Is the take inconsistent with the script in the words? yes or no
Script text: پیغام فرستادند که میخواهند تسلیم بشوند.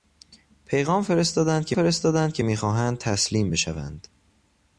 yes